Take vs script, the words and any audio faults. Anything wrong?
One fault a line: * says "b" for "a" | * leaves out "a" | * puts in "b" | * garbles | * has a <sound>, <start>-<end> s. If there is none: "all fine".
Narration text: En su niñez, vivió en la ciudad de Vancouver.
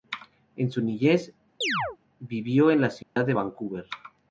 * has a chirp, 1.6-2.0 s
* has a dropout, 3.0-3.2 s